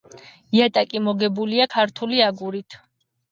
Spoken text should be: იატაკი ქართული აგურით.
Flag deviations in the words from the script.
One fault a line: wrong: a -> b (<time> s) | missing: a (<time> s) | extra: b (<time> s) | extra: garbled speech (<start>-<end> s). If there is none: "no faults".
extra: მოგებულია (1.1 s)